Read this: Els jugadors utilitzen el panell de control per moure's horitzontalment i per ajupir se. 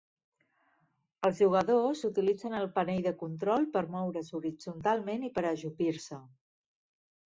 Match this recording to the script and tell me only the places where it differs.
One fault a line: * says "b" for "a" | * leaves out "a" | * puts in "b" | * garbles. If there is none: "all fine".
all fine